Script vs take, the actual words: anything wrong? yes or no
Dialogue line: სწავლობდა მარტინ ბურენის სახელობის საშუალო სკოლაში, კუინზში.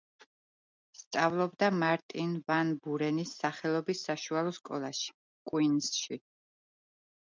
yes